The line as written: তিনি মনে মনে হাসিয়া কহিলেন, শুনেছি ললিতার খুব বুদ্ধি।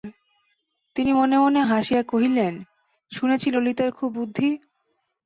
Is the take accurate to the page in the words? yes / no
yes